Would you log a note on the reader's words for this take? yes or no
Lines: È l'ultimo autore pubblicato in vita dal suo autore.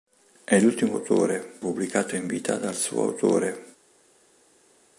no